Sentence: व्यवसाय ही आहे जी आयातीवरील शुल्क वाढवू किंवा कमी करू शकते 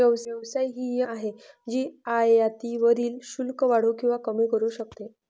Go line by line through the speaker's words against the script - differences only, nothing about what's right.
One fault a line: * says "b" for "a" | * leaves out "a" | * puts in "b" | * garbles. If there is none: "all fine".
all fine